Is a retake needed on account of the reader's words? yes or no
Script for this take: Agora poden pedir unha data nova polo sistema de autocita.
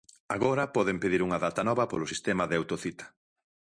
no